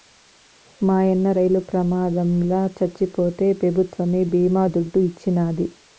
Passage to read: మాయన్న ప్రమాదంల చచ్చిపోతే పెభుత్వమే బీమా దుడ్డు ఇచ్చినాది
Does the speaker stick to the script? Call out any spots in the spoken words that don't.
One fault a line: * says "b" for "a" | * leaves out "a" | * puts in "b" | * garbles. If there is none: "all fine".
* puts in "రైలు"